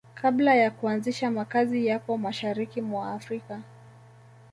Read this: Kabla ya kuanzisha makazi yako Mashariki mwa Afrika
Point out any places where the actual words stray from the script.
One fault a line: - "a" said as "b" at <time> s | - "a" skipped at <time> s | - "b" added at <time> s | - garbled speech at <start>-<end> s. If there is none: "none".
none